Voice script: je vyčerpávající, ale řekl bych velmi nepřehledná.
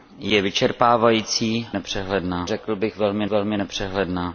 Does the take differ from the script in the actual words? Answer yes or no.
yes